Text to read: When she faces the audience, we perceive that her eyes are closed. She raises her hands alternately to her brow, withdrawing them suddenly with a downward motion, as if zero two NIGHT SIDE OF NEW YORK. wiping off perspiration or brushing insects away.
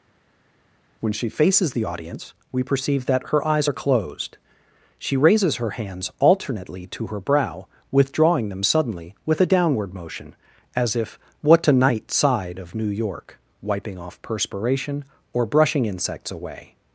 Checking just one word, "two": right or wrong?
wrong